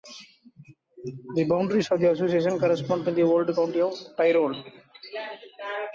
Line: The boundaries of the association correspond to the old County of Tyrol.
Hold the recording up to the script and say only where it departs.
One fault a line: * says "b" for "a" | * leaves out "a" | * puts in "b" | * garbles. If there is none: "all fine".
all fine